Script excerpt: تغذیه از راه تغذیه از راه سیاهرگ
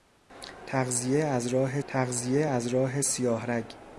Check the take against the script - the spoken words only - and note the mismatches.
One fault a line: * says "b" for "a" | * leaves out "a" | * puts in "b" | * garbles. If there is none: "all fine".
all fine